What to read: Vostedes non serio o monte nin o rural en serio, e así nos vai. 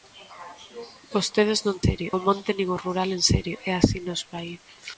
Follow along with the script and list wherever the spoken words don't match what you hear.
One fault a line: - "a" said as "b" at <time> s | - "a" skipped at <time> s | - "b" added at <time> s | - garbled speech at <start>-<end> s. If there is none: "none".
none